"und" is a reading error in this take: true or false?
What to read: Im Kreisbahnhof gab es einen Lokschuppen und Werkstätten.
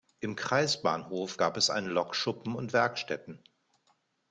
false